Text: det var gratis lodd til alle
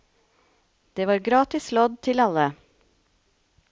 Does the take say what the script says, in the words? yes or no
yes